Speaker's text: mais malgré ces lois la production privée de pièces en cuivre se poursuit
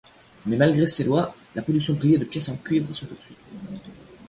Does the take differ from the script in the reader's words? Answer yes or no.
no